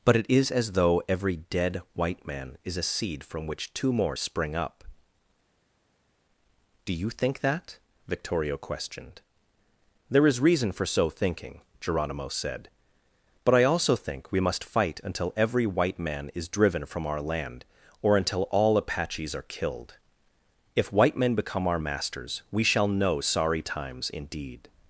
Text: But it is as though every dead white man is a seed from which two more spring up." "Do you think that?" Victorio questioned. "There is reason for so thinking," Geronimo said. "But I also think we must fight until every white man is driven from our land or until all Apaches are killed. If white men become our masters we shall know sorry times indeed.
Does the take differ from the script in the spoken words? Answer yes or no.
no